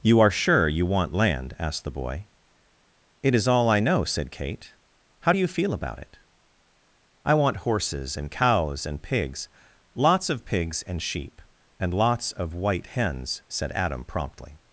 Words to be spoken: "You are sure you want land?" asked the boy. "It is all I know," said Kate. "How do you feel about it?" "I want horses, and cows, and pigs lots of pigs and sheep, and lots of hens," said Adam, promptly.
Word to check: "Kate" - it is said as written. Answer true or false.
true